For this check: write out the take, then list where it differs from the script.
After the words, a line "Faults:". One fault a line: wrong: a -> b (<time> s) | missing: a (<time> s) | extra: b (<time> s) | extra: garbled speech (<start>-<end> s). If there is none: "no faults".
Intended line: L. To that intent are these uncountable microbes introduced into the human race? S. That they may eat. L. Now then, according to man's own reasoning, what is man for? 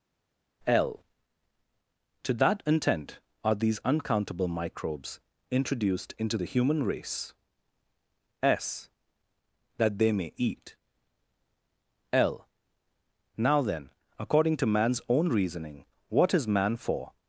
L. To that intent are these uncountable microbes introduced into the human race? S. That they may eat. L. Now then, according to man's own reasoning, what is man for?
Faults:
no faults